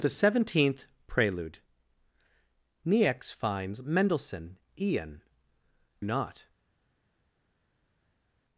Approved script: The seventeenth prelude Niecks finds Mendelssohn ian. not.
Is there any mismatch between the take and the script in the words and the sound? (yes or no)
no